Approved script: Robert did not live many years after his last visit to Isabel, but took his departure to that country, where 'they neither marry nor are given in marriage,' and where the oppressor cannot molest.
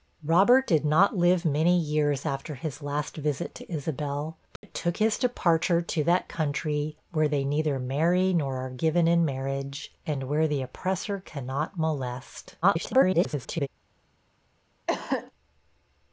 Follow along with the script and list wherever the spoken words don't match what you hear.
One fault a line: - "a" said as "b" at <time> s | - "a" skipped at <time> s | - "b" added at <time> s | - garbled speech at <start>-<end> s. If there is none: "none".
- garbled speech at 12.6-13.7 s